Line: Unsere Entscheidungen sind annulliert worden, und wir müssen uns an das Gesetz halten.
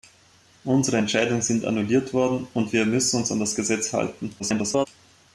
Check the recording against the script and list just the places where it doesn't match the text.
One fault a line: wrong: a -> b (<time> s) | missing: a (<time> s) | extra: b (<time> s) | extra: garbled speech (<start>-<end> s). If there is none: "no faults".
extra: garbled speech (4.4-4.9 s)